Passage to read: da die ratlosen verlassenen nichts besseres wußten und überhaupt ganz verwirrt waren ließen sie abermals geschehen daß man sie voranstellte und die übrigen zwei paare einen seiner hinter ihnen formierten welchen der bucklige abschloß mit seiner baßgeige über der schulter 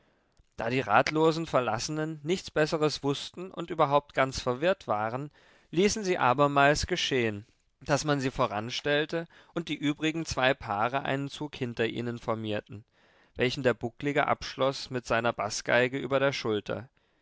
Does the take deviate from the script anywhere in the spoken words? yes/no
yes